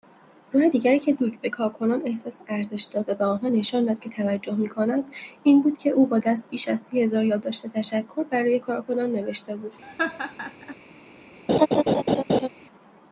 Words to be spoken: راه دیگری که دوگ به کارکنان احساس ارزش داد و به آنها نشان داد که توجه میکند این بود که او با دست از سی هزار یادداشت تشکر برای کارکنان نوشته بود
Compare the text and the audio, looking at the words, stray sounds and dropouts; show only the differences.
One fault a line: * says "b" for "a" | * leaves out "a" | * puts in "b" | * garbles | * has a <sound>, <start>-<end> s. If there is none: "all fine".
* puts in "بیش"
* has a laugh, 9.8-10.8 s
* has a laugh, 11.5-12.5 s